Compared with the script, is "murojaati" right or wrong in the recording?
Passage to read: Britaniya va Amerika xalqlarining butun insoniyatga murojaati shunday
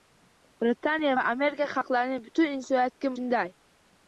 wrong